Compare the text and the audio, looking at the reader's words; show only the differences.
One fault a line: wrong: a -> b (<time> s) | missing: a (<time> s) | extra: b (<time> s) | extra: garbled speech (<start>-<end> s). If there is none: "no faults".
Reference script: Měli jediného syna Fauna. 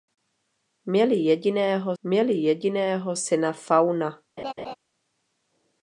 extra: měli jediného (2.0 s)